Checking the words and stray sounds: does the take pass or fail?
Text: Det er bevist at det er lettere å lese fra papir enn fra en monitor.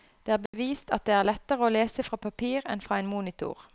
fail